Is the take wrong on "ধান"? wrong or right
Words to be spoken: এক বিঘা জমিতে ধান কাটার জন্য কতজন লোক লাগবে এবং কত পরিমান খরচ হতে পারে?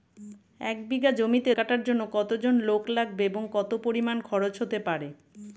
wrong